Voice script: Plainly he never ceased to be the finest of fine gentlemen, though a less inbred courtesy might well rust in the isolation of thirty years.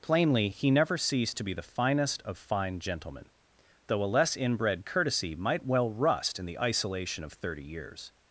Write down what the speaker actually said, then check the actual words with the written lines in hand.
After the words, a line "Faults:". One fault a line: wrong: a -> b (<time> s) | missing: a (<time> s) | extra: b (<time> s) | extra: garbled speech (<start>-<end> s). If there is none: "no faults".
Plainly he never ceased to be the finest of fine gentlemen, though a less inbred courtesy might well rust in the isolation of thirty years.
Faults:
no faults